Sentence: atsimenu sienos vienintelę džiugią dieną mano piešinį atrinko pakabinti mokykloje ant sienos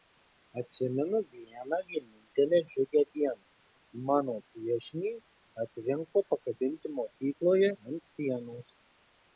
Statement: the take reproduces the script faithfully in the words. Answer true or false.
false